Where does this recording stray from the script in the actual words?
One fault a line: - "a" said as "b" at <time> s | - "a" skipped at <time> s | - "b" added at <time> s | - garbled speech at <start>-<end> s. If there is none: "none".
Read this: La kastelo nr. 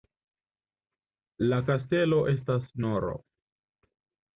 - "estas" added at 2.4 s